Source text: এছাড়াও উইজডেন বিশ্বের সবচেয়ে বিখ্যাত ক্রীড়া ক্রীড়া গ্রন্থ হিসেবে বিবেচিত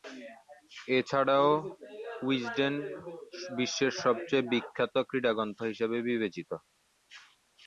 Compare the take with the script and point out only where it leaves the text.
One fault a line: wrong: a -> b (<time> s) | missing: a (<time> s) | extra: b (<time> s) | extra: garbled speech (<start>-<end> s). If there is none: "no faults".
missing: ক্রীড়া (5.3 s)